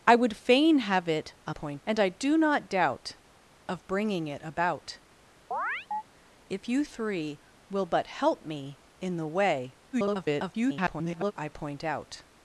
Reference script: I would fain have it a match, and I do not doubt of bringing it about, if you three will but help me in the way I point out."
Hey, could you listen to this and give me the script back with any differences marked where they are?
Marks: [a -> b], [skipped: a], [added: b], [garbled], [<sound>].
I would fain have it a [match, -> point] and I do not doubt of bringing it about, [chirp] if you three will but help me in the way [garbled] I point out."